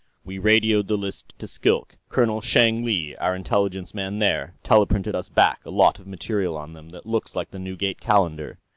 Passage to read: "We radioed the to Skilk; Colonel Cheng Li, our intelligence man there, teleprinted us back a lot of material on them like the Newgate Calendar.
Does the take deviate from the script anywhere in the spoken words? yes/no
yes